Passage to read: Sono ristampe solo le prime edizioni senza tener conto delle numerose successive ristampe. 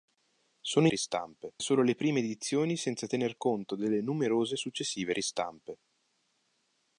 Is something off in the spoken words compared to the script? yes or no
no